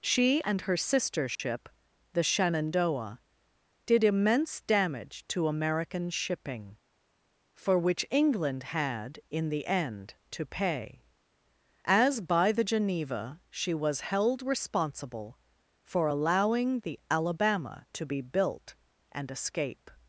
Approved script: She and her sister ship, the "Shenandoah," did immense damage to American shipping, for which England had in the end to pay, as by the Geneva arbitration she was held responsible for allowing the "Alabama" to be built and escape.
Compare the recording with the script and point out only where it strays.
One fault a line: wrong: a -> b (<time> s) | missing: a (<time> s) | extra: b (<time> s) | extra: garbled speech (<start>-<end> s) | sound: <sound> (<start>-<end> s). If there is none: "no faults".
sound: dropout (1.3-1.4 s)
missing: arbitration (13.4 s)